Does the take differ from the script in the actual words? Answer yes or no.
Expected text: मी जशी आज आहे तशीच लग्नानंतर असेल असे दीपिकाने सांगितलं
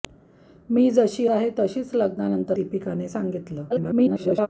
yes